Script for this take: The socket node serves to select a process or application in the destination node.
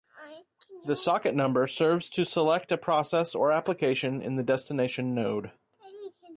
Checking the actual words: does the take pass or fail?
fail